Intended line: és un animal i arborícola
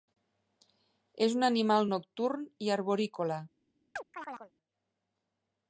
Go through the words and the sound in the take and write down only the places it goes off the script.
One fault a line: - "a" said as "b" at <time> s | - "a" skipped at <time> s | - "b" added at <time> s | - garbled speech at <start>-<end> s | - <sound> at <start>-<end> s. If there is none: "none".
- "nocturn" added at 1.9 s
- chirp at 4.0-4.5 s